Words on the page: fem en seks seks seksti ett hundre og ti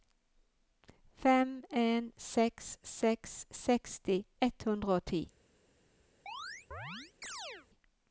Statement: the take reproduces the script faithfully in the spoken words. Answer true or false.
true